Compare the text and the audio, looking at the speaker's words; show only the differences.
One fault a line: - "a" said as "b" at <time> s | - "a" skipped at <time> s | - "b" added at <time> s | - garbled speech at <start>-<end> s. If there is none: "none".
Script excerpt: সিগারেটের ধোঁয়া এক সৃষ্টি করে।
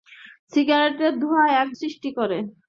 none